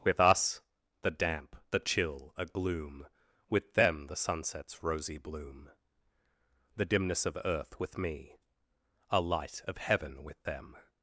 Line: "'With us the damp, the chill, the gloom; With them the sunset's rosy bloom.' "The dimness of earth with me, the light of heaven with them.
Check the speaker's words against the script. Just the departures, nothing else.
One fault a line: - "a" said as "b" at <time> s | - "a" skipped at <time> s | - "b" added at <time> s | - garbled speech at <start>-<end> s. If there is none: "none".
- "the" said as "a" at 2.4 s
- "the" said as "a" at 9.1 s